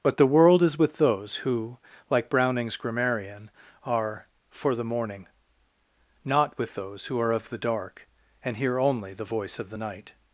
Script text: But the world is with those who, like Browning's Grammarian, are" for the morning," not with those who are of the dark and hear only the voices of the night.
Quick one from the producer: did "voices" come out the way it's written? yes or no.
no